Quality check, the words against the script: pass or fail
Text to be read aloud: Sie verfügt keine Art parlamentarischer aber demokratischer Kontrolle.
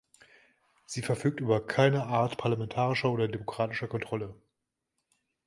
fail